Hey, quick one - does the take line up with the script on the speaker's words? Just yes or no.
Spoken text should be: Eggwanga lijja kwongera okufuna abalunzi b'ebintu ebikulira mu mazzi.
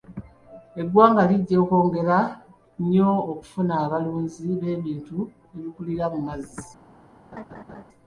no